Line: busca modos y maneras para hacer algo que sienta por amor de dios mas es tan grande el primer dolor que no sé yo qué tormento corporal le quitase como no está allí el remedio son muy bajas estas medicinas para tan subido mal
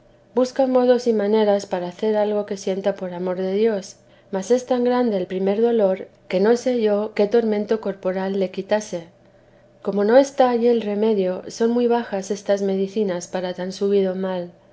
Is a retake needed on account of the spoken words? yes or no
no